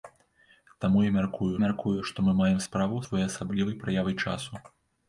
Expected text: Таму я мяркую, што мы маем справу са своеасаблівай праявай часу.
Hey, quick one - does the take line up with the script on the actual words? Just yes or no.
no